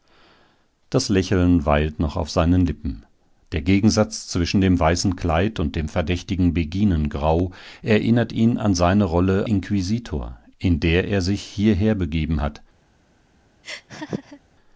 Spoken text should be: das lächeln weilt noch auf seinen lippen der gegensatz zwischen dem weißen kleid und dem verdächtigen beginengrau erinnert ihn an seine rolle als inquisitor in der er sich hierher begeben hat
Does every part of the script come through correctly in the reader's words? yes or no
no